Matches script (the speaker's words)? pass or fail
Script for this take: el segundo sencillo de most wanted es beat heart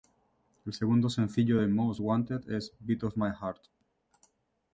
fail